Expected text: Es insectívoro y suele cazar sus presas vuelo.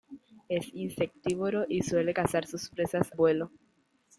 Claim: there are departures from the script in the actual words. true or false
false